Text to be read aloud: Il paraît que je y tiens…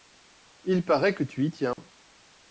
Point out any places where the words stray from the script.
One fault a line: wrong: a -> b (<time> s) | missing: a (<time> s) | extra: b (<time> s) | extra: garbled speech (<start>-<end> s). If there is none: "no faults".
wrong: je -> tu (1.2 s)